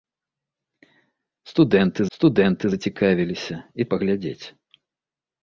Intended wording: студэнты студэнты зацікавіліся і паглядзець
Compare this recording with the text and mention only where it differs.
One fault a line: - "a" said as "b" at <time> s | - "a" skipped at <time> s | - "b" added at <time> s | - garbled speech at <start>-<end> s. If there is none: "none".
none